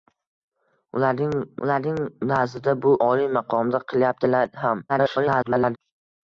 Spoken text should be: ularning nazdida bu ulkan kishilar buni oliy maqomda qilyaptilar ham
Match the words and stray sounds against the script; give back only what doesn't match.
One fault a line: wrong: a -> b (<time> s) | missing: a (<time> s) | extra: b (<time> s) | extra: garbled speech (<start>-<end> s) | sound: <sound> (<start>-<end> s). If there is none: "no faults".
extra: ularning (1.7 s)
missing: ulkan kishilar buni (2.9 s)
extra: garbled speech (4.9-5.8 s)